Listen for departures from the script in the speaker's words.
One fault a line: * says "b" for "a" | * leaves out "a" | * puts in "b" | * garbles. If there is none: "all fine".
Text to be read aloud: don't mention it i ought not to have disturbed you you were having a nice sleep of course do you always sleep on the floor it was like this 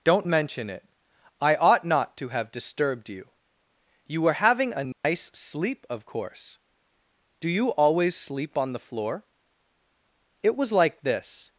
all fine